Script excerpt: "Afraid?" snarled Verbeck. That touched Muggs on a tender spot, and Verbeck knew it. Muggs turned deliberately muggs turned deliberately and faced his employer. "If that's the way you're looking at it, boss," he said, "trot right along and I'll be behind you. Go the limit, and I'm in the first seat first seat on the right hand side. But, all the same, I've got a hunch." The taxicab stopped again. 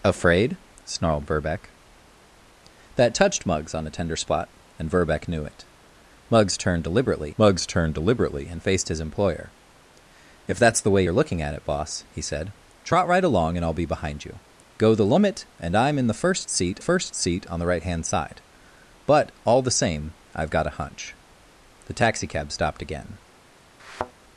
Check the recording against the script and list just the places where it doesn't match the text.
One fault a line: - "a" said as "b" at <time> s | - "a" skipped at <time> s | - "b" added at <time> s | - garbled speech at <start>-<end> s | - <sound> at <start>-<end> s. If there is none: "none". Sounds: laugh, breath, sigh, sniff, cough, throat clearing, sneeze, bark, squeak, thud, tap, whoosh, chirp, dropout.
- thud at 23.8-24.1 s